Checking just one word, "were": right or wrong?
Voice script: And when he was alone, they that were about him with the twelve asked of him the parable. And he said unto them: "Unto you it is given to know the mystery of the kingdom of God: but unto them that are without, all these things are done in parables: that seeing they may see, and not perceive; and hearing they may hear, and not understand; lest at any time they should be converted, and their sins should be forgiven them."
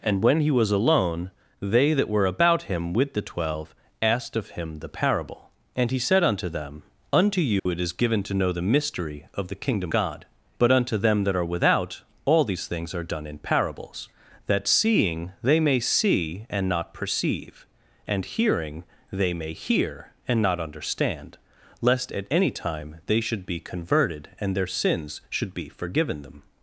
right